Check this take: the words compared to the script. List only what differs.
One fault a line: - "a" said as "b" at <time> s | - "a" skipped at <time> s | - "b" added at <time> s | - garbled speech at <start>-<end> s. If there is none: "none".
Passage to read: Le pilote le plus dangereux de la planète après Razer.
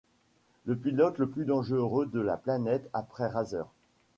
none